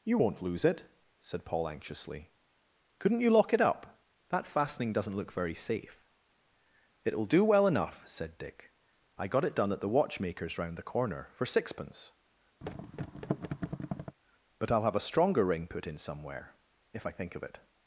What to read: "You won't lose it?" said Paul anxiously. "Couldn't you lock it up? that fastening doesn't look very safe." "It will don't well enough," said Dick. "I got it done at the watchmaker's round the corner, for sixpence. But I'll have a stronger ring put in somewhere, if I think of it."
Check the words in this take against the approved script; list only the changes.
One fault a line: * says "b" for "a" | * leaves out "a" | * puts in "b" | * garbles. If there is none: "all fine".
* says "do" for "don't"